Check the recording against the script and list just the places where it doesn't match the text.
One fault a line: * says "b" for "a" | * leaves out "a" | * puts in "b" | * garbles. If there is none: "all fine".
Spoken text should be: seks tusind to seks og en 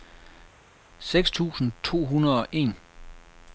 * says "hundrede" for "seks"